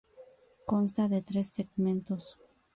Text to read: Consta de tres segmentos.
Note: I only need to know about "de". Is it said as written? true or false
true